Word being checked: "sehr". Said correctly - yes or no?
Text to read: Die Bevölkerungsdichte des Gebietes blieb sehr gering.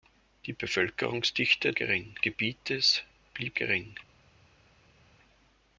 no